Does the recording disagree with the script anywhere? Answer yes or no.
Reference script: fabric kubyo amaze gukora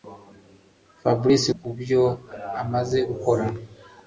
no